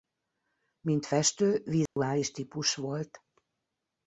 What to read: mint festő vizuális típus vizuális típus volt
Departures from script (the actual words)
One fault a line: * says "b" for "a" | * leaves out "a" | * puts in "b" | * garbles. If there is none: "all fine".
* leaves out "vizuális típus"